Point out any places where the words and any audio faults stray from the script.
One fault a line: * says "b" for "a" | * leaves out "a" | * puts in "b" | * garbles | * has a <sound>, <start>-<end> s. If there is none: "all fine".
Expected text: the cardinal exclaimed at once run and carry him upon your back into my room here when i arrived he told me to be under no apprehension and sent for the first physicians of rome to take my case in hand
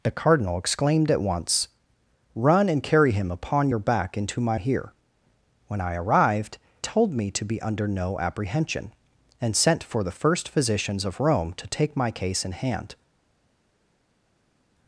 * leaves out "room"
* leaves out "he"